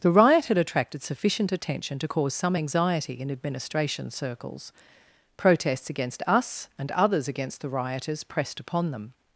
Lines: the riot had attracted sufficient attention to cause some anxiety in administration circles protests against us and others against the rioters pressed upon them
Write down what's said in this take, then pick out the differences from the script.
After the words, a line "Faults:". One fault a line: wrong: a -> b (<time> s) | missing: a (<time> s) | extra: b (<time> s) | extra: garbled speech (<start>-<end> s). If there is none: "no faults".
the riot had attracted sufficient attention to cause some anxiety in administration circles protests against us and others against the rioters pressed upon them
Faults:
no faults